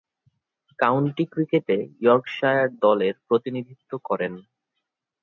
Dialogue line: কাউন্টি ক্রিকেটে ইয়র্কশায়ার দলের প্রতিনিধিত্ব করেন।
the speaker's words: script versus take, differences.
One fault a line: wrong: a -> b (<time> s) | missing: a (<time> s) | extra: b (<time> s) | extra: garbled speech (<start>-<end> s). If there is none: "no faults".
no faults